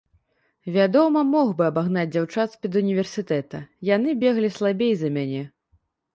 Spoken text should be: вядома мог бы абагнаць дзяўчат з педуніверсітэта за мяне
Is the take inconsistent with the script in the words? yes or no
yes